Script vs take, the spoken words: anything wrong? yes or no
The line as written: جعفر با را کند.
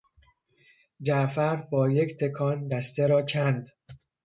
yes